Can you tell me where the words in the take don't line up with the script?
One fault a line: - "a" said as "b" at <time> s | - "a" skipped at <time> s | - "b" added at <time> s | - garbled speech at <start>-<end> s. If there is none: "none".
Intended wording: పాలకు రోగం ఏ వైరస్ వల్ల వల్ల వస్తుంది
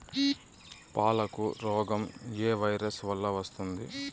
- "వల్ల" skipped at 3.3 s